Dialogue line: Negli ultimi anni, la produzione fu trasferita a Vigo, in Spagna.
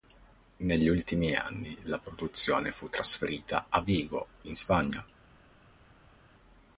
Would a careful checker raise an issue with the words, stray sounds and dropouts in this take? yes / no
no